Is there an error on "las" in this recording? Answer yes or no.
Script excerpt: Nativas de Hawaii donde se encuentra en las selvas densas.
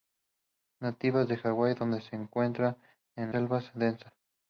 yes